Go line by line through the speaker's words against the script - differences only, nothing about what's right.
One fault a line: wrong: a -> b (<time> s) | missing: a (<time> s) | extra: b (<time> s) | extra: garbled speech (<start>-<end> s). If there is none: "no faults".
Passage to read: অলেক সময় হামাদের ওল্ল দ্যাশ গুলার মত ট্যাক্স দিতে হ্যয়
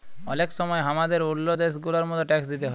no faults